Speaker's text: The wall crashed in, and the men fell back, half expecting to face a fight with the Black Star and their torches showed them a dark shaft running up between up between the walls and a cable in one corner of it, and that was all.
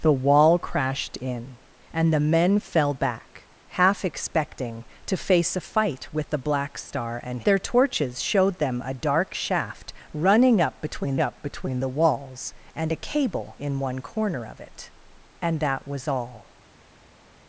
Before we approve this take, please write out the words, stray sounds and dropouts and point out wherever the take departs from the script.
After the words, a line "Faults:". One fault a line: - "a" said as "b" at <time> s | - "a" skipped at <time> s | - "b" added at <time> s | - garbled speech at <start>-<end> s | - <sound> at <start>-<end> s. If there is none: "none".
The wall crashed in, and the men fell back, half expecting to face a fight with the Black Star and their torches showed them a dark shaft running up between up between the walls and a cable in one corner of it, and that was all.
Faults:
none